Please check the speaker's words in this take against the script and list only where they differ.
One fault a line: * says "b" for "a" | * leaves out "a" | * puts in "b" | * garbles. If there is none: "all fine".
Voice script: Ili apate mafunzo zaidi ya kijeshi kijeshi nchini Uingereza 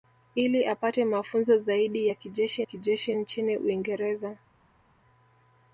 all fine